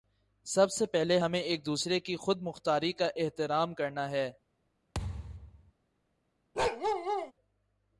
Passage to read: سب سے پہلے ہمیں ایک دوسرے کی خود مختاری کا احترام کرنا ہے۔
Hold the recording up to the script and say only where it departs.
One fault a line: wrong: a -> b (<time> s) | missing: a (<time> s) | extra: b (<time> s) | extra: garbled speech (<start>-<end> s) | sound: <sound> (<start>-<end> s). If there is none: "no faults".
sound: thud (4.9-5.7 s)
sound: bark (6.6-7.3 s)